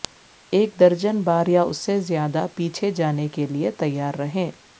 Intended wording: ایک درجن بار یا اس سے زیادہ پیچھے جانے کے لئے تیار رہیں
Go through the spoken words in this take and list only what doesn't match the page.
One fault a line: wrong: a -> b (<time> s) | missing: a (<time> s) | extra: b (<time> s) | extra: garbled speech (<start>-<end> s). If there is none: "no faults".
no faults